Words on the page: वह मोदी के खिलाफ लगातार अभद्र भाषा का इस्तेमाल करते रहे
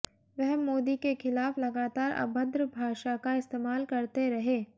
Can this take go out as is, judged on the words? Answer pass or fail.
pass